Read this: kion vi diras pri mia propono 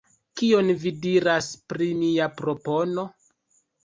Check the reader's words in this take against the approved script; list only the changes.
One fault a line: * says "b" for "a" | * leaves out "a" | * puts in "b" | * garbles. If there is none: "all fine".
all fine